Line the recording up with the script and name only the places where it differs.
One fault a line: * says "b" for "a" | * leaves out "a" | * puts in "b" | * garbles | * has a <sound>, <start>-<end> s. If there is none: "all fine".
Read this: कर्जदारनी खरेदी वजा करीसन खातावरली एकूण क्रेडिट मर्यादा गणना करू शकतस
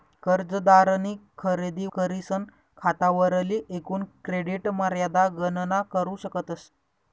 * leaves out "वजा"